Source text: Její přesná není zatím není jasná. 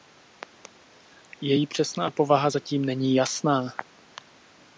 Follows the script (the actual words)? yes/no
no